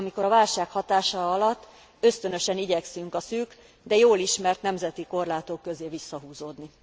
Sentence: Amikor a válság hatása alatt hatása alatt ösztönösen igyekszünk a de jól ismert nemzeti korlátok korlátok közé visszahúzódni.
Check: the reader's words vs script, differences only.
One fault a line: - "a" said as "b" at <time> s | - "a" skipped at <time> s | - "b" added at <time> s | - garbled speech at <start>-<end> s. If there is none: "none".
- "hatása alatt" skipped at 1.7 s
- "szűk" added at 3.2 s
- "korlátok" skipped at 5.6 s